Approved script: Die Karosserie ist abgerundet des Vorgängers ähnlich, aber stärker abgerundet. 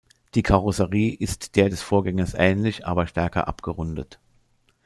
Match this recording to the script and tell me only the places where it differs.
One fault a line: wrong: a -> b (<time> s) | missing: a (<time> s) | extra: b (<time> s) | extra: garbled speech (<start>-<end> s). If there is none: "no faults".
wrong: abgerundet -> der (1.6 s)